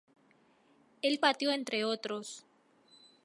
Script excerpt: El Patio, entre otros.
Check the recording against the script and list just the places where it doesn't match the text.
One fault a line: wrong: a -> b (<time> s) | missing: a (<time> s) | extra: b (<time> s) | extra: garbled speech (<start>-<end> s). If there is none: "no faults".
no faults